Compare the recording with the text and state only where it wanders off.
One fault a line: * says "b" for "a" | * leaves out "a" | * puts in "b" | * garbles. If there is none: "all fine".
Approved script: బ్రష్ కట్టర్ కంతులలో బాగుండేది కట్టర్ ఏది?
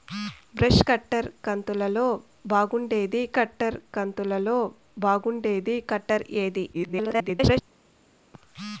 * puts in "కంతులలో బాగుండేది కట్టర్"
* garbles